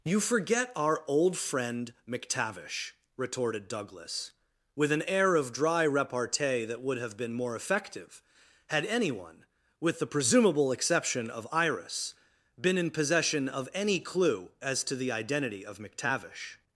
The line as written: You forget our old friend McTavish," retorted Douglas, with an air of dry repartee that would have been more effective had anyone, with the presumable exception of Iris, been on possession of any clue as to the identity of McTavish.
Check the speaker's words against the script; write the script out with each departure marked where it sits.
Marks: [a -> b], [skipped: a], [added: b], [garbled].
You forget our old friend McTavish," retorted Douglas, with an air of dry repartee that would have been more effective had anyone, with the presumable exception of Iris, been [on -> in] possession of any clue as to the identity of McTavish.